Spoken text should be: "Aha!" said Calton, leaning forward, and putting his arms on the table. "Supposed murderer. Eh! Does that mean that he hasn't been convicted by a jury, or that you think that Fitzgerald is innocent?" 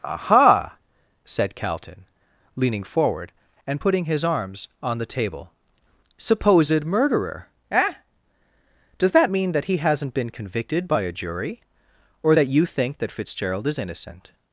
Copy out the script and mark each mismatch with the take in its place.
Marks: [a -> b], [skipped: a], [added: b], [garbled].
"Aha!" said Calton, leaning forward, and putting his arms on the table. "Supposed murderer. Eh! Does that mean that he hasn't been convicted by a jury, or that you think that Fitzgerald is innocent?"